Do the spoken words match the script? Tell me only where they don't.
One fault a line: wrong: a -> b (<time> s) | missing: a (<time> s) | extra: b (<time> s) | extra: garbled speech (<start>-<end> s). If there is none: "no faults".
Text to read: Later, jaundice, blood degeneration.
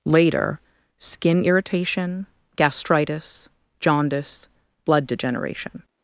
extra: skin irritation gastritis (1.0 s)